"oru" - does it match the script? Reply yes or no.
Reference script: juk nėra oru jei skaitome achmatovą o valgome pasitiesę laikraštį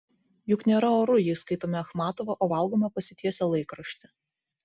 yes